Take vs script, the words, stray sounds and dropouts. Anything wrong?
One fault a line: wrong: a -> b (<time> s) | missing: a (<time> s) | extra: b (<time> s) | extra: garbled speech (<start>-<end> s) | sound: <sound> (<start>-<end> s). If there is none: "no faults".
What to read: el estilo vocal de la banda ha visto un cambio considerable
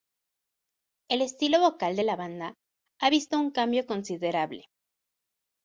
no faults